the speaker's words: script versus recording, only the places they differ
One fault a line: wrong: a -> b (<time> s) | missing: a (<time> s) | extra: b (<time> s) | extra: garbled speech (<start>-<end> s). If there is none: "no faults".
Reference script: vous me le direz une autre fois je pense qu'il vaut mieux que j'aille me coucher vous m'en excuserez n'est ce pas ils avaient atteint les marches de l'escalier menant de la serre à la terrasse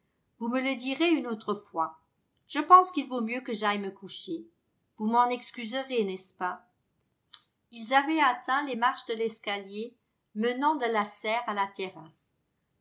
no faults